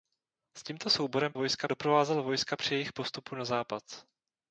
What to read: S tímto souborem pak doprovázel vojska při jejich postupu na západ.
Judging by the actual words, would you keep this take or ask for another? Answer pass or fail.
fail